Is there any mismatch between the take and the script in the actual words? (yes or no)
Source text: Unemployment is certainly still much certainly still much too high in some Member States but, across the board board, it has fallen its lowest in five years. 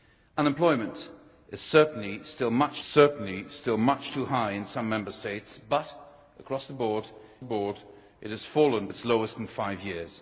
no